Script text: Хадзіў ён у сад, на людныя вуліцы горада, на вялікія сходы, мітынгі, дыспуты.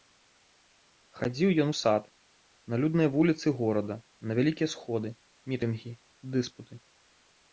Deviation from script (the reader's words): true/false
false